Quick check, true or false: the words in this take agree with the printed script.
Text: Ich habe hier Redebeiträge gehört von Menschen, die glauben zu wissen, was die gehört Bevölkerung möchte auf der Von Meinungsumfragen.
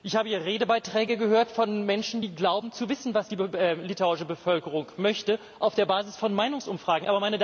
false